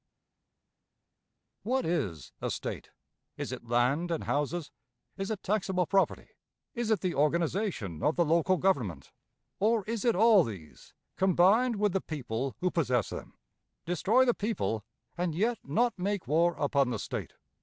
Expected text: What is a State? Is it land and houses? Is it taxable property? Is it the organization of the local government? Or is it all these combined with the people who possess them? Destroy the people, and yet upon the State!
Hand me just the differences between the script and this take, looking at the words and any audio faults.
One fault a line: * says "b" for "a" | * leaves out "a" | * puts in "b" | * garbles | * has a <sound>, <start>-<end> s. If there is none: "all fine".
* puts in "not make war"